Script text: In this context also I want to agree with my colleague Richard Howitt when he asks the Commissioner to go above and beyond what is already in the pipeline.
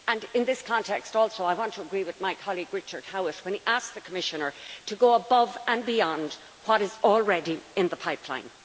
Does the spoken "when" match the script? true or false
true